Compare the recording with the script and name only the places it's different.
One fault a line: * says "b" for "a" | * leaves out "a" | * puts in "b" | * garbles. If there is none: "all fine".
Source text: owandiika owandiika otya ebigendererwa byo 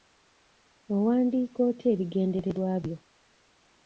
* leaves out "owandiika"